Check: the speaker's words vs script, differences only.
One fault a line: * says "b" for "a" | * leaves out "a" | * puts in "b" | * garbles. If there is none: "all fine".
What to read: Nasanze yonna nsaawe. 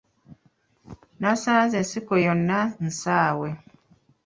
* puts in "ensiko"